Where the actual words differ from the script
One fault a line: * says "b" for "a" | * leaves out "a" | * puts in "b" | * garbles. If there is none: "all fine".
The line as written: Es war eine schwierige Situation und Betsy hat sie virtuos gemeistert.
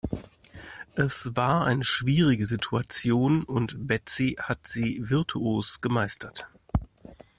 all fine